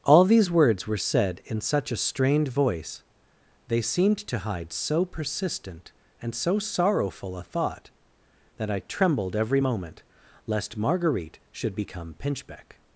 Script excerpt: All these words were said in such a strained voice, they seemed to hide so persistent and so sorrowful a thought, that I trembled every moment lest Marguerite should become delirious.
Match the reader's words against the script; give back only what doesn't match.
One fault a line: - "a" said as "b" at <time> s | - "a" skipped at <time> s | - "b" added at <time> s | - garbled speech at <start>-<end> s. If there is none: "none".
- "delirious" said as "pinchbeck" at 12.1 s